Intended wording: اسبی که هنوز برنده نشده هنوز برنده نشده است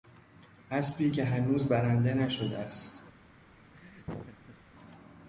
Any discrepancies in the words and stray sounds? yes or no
yes